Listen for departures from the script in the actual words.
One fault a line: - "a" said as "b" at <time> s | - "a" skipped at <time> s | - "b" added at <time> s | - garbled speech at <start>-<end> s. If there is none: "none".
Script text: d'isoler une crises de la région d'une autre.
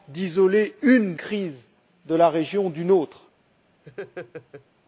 none